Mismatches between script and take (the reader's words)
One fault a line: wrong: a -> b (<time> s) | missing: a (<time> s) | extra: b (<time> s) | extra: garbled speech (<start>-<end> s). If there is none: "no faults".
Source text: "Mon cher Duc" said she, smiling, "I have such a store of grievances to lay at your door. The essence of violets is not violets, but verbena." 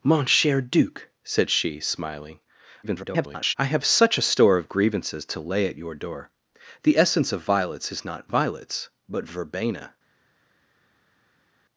extra: garbled speech (2.8-3.5 s)